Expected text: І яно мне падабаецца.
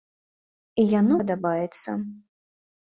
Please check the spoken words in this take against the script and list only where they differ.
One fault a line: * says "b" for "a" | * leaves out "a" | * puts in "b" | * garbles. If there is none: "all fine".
* leaves out "мне"